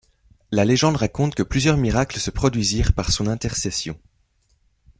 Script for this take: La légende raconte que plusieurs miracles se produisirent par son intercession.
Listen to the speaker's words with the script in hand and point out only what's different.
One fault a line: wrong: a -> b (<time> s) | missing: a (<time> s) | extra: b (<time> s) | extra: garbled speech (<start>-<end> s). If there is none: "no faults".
no faults